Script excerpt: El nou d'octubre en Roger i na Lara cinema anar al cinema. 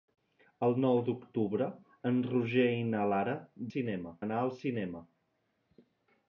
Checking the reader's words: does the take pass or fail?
pass